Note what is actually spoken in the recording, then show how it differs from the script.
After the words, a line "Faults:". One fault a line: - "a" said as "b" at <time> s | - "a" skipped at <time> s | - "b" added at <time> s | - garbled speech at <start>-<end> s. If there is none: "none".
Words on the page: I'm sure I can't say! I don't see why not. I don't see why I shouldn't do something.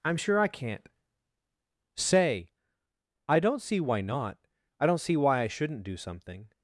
I'm sure I can't say! I don't see why not. I don't see why I shouldn't do something.
Faults:
none